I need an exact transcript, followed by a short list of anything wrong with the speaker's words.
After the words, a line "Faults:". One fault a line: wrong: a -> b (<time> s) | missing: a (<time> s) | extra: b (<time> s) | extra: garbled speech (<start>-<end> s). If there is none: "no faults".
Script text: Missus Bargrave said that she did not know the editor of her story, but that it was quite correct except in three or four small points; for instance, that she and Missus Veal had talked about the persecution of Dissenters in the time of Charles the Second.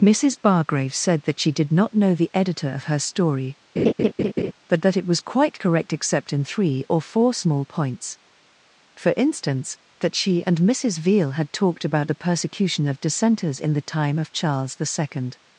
Missus Bargrave said that she did not know the editor of her story, but that it was quite correct except in three or four small points; for instance, that she and Missus Veal had talked about the persecution of Dissenters in the time of Charles the Second.
Faults:
no faults